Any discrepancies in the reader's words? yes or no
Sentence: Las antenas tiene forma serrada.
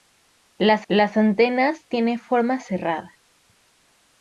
yes